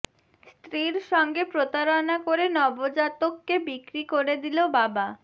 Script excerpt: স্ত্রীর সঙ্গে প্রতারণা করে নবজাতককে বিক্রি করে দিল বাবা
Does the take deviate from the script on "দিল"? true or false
false